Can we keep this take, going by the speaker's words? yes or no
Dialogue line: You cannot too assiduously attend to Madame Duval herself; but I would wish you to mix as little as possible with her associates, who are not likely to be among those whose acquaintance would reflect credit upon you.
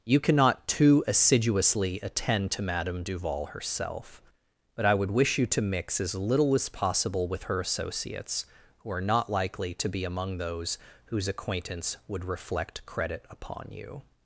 yes